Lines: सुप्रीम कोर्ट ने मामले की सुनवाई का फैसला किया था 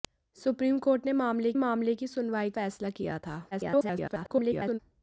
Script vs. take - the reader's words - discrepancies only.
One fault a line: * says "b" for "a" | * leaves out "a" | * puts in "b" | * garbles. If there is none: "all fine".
* puts in "मामले"
* leaves out "का"
* garbles